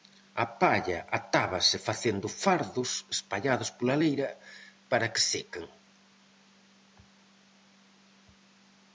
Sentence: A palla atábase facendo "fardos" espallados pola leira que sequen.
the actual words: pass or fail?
fail